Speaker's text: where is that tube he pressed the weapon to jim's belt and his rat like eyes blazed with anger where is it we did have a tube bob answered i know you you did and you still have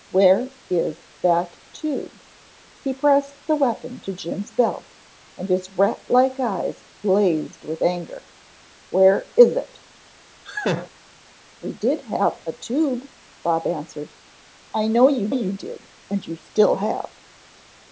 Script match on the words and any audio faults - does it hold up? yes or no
no